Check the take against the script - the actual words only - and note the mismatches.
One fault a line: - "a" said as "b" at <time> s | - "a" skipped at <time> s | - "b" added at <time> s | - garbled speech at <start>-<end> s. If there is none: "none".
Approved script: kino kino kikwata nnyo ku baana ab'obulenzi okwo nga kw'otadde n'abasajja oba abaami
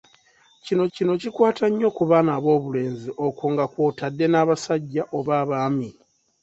none